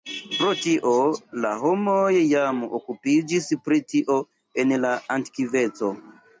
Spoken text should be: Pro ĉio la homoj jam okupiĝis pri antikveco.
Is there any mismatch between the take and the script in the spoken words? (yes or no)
yes